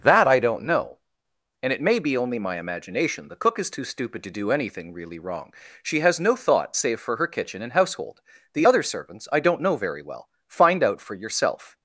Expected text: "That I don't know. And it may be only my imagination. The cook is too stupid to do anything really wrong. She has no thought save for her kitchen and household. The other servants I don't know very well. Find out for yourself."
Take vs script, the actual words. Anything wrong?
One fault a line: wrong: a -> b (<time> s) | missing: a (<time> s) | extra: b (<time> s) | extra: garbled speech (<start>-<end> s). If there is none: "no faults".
no faults